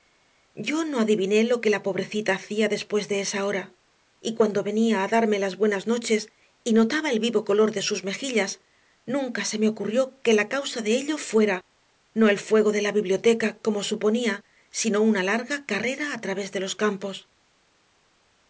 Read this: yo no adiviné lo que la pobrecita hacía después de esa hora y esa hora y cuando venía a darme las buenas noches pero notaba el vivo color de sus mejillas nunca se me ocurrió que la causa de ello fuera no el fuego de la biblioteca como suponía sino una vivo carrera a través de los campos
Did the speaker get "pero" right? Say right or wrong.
wrong